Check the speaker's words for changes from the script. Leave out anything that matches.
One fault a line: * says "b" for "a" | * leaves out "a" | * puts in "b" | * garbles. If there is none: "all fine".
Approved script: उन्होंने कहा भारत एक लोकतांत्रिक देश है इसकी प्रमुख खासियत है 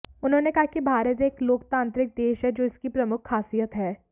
* puts in "कि"
* puts in "जो"